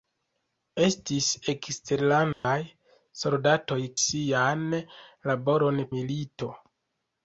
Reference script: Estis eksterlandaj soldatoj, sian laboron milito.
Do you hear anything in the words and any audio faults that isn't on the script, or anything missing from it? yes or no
yes